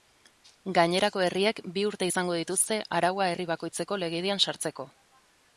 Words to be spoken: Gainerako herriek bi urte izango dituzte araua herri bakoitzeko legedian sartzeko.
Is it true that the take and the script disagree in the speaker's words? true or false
false